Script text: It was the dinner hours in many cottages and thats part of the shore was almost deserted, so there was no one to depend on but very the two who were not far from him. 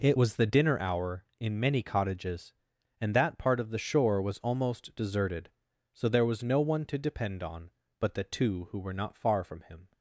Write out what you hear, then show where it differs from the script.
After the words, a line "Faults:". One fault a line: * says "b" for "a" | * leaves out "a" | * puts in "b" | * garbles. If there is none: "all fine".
It was the dinner hour in many cottages and that part of the shore was almost deserted, so there was no one to depend on but the two who were not far from him.
Faults:
* says "hour" for "hours"
* says "that" for "thats"
* leaves out "very"